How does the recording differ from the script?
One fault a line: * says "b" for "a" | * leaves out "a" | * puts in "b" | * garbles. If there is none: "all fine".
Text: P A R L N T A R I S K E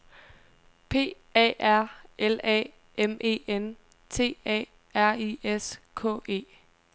* puts in "A M E"